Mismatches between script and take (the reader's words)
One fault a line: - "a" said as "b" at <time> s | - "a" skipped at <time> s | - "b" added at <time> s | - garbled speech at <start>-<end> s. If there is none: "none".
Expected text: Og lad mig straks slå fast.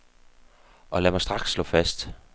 none